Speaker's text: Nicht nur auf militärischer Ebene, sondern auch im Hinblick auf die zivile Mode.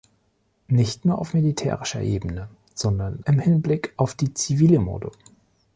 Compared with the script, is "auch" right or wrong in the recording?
wrong